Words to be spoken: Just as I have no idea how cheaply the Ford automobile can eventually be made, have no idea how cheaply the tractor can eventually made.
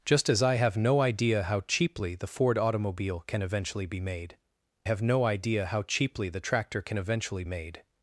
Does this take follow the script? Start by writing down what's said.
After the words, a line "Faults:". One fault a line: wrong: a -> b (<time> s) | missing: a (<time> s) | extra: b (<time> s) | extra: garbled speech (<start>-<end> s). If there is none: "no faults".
Just as I have no idea how cheaply the Ford automobile can eventually be made, have no idea how cheaply the tractor can eventually made.
Faults:
no faults